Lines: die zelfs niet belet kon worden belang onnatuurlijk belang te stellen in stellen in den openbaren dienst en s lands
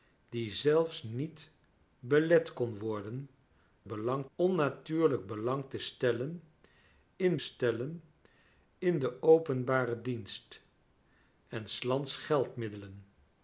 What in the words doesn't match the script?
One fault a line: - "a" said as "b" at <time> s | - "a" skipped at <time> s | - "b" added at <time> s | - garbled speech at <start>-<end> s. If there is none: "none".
none